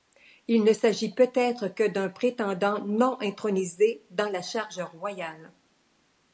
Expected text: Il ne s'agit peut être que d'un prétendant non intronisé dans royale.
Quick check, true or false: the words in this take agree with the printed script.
false